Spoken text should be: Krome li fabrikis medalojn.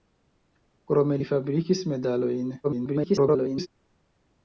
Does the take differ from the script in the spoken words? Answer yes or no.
yes